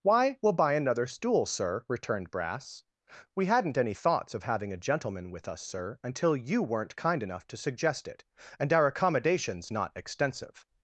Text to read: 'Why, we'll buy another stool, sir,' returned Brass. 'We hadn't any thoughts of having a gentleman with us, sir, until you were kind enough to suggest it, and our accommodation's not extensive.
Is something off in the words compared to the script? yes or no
yes